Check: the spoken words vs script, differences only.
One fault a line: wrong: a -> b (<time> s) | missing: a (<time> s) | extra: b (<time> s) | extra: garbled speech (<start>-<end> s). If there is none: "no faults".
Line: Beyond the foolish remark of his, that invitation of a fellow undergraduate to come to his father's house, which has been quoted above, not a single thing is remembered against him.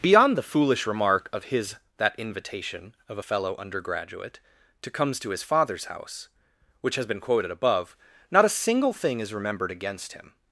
wrong: come -> comes (4.9 s)